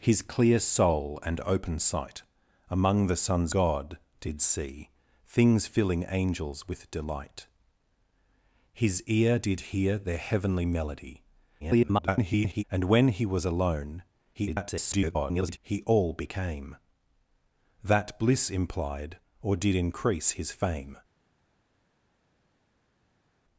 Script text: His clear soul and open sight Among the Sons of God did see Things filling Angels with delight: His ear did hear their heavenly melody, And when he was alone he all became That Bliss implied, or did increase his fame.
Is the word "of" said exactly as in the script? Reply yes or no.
no